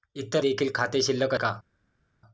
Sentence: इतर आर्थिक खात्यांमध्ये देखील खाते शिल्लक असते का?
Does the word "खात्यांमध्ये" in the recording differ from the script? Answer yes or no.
yes